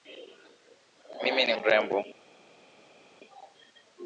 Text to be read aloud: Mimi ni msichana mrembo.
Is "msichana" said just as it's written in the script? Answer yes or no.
no